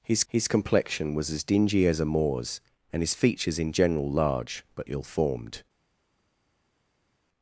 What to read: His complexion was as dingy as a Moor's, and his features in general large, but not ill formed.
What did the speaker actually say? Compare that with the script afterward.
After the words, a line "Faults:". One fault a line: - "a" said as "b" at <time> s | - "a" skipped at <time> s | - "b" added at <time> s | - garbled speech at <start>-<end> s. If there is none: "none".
His his complexion was as dingy as a Moor's, and his features in general large, but ill formed.
Faults:
- "his" added at 0.3 s
- "not" skipped at 4.9 s